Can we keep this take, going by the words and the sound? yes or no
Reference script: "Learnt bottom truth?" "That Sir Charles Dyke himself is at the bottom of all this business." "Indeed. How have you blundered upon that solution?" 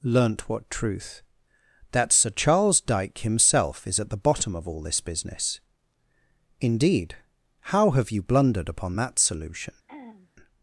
no